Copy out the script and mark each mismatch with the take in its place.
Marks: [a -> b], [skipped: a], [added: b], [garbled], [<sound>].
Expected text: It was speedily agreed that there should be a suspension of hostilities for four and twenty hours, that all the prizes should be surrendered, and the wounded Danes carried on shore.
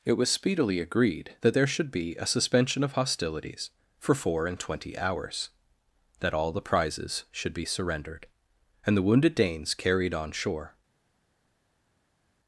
It was speedily agreed that there should be a suspension of hostilities for four and twenty hours, that all the prizes should be surrendered, and the wounded Danes carried on shore.